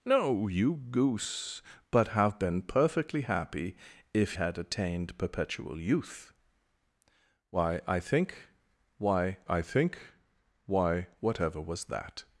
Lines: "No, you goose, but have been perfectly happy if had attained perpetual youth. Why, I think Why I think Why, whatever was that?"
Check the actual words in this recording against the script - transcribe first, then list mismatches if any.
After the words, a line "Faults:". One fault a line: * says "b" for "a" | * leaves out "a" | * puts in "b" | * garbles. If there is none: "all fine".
"No, you goose, but have been perfectly happy if had attained perpetual youth. Why, I think Why I think Why, whatever was that?"
Faults:
all fine